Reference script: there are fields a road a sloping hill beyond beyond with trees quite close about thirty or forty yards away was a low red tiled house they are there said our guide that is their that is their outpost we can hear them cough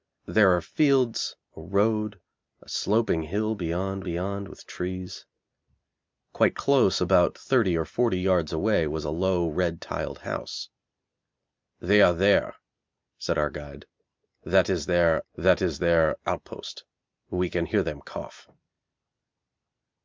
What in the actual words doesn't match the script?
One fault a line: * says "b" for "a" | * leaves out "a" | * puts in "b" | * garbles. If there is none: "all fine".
all fine